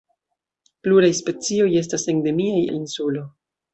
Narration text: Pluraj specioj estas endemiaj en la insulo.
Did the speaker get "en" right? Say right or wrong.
wrong